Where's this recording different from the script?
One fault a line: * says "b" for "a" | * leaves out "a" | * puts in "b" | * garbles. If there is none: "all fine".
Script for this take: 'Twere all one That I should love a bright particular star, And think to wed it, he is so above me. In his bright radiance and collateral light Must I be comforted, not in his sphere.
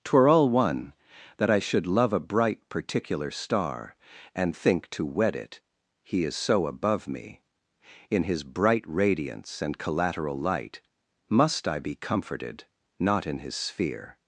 all fine